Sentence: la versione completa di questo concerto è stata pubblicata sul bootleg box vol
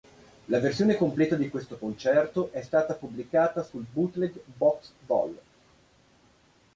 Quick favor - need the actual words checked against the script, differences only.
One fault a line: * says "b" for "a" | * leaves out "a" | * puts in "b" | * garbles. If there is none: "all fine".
all fine